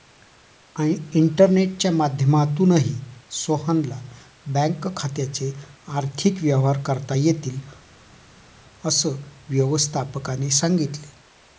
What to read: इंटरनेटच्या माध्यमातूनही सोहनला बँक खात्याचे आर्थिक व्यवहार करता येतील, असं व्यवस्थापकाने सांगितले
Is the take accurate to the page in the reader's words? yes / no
yes